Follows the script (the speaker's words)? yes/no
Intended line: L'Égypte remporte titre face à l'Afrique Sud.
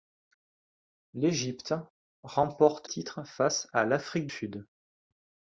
yes